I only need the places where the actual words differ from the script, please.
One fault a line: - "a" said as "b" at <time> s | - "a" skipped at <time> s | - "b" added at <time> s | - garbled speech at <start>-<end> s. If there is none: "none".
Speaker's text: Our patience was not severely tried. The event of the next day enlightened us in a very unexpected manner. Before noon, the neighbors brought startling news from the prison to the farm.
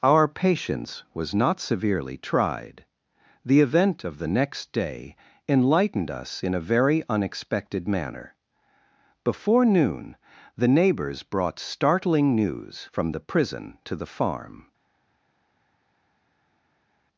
none